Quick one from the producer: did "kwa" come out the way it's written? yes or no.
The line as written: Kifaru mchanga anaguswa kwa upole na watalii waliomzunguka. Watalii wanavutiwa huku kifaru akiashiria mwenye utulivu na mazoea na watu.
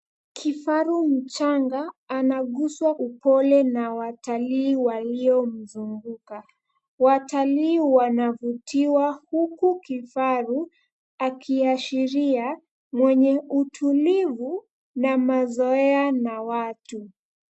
no